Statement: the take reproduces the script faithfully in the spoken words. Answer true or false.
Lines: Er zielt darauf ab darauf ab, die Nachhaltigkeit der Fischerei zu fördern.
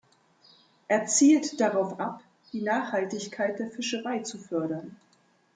false